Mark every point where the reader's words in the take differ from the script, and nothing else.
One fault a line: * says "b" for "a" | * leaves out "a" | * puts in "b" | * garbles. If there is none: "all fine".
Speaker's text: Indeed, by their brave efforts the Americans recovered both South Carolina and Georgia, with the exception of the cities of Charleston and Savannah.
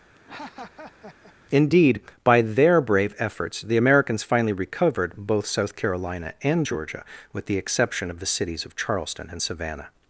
* puts in "finally"